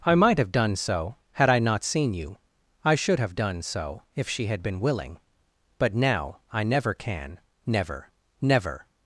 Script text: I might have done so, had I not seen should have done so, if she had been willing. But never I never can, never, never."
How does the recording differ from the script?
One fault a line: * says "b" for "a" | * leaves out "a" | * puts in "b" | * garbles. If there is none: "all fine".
* puts in "you I"
* says "now" for "never"